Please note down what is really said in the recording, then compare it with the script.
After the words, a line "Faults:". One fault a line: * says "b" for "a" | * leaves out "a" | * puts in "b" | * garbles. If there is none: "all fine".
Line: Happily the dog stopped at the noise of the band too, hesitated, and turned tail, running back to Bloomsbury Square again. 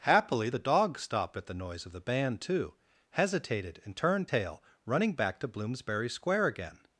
Happily the dog stopped at the noise of the band too, hesitated, and turned tail, running back to Bloomsbury Square again.
Faults:
all fine